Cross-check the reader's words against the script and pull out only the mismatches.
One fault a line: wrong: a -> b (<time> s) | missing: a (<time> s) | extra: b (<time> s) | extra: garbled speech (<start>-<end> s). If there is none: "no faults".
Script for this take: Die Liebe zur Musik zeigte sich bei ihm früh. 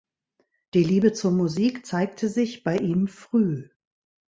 no faults